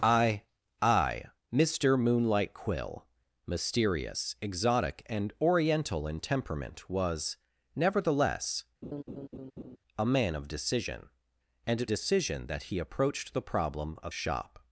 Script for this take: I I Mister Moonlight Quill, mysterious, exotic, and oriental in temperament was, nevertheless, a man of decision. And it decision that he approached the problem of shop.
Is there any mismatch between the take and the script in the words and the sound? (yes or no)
yes